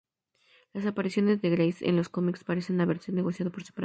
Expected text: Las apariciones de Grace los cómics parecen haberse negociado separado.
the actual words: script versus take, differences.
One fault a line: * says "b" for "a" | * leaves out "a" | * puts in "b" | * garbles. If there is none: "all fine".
* puts in "en"
* puts in "por"